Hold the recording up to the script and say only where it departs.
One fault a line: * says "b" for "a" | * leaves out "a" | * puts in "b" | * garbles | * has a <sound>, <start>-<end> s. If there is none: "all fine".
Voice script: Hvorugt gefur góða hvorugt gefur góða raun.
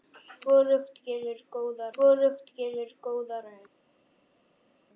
all fine